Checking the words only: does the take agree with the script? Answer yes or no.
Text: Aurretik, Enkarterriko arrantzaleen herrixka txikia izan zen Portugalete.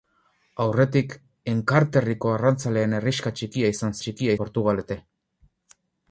no